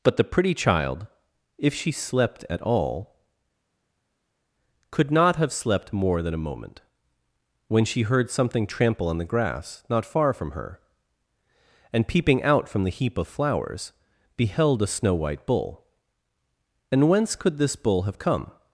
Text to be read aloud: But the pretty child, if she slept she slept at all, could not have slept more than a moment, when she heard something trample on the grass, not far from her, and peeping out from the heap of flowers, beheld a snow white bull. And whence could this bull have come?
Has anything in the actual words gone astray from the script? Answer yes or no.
yes